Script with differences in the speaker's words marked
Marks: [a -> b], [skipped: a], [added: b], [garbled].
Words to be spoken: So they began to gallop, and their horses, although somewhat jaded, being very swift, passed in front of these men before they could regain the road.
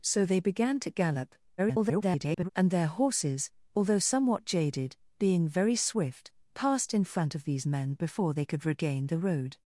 So they began to gallop, [garbled] and their horses, although somewhat jaded, being very swift, passed in front of these men before they could regain the road.